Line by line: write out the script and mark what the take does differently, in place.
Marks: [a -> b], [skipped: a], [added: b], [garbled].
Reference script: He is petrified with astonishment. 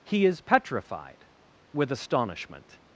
He is petrified with astonishment.